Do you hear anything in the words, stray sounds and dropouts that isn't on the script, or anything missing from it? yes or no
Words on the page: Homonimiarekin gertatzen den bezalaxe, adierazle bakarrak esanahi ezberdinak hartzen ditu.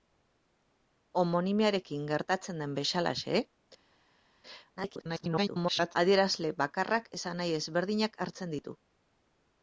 yes